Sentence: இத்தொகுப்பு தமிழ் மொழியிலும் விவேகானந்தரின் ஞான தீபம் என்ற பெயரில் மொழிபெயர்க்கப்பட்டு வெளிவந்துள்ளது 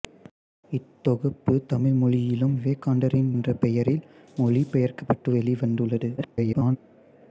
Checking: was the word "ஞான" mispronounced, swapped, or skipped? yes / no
yes